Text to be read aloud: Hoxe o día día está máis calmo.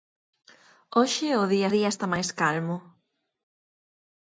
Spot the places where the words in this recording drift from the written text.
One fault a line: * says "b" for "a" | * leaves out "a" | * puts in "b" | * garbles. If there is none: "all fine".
all fine